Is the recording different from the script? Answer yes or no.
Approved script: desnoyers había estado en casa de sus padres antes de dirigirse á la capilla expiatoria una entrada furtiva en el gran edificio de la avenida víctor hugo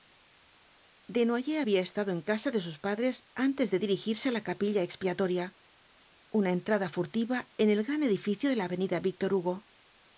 no